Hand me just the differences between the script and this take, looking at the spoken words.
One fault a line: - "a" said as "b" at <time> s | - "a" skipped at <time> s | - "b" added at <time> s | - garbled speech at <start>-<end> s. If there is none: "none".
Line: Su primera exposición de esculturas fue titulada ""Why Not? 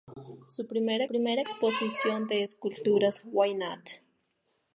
- "primera" added at 1.0 s
- "fue titulada" skipped at 3.2 s